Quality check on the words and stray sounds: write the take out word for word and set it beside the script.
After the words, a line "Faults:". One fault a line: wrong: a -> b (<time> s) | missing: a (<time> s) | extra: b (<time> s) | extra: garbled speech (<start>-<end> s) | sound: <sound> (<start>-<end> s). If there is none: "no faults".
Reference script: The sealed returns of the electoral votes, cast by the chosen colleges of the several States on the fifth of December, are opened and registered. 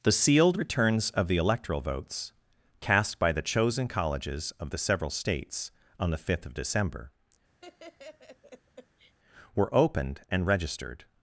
The sealed returns of the electoral votes, cast by the chosen colleges of the several States on the fifth of December, were opened and registered.
Faults:
sound: laugh (7.6-9.2 s)
wrong: are -> were (9.6 s)